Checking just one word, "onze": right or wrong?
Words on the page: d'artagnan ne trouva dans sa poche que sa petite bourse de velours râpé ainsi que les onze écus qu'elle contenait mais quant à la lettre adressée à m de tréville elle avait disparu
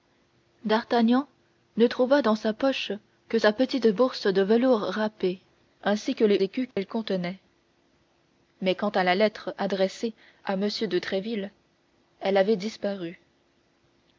wrong